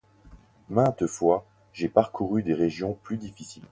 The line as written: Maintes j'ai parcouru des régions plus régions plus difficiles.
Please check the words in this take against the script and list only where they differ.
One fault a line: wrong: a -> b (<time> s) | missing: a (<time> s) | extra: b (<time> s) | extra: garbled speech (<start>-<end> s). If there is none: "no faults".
extra: fois (1.0 s)
missing: régions plus (3.2 s)